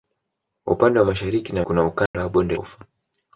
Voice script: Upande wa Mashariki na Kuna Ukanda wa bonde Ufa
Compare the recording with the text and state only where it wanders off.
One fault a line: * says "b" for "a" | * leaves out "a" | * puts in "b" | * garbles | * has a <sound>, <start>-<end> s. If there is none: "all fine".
* has a dropout, 2.1-2.1 s